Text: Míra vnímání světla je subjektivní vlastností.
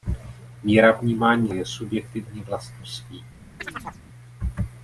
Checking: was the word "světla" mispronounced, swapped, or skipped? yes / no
yes